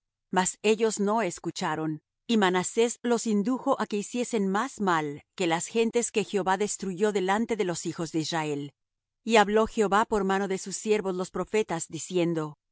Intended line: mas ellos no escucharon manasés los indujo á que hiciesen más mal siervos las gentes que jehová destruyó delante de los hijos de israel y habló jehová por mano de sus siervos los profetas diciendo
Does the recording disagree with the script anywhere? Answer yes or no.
yes